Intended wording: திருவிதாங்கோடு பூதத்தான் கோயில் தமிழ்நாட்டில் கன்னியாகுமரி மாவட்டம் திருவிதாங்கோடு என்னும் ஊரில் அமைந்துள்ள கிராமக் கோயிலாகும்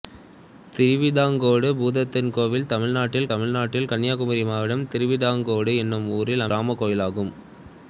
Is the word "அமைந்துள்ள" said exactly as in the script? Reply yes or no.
no